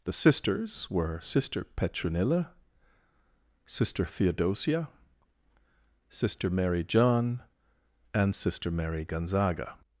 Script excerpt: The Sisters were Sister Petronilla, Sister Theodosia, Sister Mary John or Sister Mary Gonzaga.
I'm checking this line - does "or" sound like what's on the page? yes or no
no